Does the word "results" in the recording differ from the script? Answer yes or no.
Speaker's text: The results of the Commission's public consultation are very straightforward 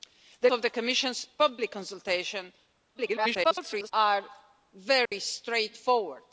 yes